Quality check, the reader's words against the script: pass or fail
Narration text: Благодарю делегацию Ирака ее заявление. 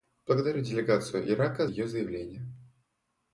pass